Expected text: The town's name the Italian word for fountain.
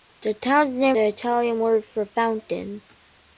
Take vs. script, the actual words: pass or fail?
pass